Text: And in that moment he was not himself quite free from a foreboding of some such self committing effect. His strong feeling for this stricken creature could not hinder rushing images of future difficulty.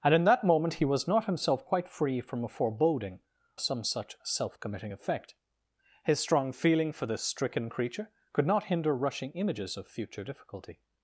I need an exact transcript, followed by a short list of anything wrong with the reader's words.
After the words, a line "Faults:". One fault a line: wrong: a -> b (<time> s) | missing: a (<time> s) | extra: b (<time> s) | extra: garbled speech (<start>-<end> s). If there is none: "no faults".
And in that moment he was not himself quite free from a foreboding some such self committing effect. His strong feeling for this stricken creature could not hinder rushing images of future difficulty.
Faults:
missing: of (3.2 s)